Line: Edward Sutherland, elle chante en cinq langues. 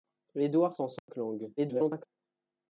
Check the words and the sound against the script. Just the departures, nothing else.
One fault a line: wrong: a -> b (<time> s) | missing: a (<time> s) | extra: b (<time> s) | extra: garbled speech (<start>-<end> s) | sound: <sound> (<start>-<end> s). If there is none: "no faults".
missing: Sutherland elle chante (0.8 s)
sound: dropout (1.0-1.1 s)
extra: garbled speech (1.6-2.1 s)